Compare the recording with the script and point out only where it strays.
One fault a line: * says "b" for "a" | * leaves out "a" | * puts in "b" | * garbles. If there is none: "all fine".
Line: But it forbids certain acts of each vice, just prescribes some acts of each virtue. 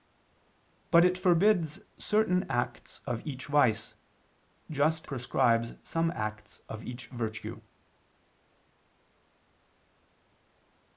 all fine